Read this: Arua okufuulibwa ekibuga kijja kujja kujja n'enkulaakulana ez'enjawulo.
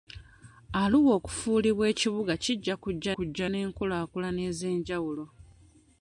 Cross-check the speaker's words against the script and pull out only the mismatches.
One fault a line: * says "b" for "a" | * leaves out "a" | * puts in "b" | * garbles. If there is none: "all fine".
all fine